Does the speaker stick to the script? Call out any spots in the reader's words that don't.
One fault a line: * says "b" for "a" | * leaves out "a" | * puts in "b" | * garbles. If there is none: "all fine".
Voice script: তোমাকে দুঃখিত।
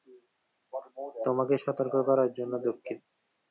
* puts in "সতর্ক করার জন্য"